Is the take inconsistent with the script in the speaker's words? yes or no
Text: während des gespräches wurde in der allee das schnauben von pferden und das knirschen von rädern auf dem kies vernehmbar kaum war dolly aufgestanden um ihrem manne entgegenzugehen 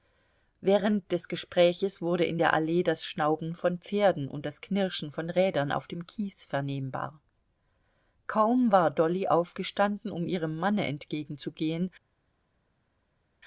no